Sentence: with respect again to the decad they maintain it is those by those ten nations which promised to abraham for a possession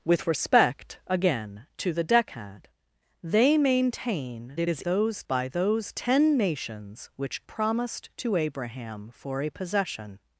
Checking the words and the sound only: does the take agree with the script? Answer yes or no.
yes